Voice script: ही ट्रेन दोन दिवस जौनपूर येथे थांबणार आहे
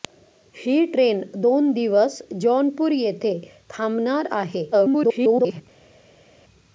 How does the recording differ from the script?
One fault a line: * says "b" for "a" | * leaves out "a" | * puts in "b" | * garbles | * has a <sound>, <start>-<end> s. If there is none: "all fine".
* garbles